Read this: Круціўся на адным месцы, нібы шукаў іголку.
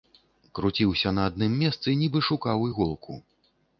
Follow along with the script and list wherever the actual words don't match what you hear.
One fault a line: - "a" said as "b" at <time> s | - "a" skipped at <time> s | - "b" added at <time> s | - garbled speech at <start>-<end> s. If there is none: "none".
none